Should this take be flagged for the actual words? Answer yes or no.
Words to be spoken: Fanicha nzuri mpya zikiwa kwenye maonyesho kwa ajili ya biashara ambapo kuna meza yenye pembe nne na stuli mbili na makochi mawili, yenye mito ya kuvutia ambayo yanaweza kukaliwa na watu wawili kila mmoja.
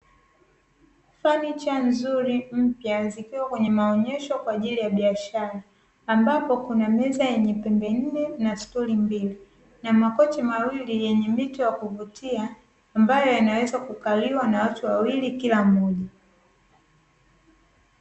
no